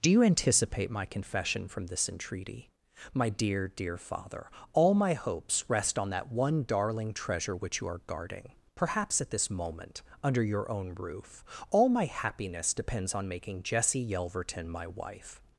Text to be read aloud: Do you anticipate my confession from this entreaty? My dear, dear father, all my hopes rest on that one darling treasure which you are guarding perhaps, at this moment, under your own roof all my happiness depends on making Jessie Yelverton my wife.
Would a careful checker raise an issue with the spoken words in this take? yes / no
no